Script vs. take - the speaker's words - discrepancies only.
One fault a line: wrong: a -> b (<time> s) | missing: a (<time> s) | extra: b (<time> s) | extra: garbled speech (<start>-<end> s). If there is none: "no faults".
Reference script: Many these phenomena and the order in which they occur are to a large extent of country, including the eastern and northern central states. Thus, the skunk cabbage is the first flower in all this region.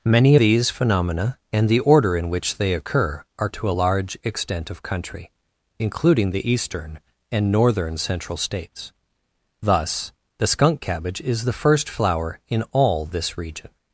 no faults